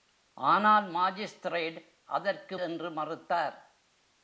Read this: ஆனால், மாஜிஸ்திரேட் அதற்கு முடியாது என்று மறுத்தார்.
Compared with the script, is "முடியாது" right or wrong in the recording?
wrong